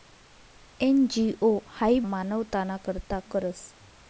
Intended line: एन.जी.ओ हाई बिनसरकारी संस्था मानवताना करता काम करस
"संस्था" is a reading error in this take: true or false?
true